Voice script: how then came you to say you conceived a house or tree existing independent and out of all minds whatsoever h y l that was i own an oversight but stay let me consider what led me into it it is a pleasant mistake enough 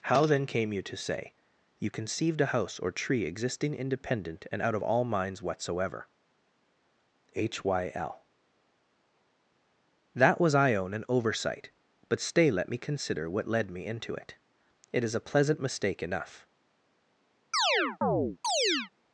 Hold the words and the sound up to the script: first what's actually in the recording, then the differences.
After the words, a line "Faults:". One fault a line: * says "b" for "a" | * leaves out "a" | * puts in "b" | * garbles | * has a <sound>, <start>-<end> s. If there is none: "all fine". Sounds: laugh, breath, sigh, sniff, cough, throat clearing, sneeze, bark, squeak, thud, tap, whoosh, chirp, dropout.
how then came you to say you conceived a house or tree existing independent and out of all minds whatsoever h y l that was i own an oversight but stay let me consider what led me into it it is a pleasant mistake enough
Faults:
* has a chirp, 17.5-18.9 s